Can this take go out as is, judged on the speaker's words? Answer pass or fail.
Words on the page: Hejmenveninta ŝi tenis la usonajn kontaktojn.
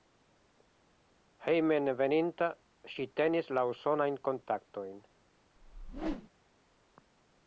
pass